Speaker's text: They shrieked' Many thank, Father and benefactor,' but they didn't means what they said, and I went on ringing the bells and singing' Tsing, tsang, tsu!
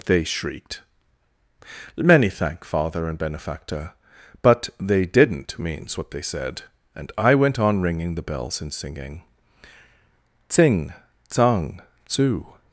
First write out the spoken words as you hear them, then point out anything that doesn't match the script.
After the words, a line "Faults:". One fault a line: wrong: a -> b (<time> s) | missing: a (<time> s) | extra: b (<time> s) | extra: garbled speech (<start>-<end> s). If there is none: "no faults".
They shrieked' Many thank, Father and benefactor,' but they didn't means what they said, and I went on ringing the bells and singing' Tsing, tsang, tsu!
Faults:
no faults